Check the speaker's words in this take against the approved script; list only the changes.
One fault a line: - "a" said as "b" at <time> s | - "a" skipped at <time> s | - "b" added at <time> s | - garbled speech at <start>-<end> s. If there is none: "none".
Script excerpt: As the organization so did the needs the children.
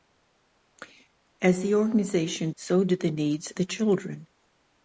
none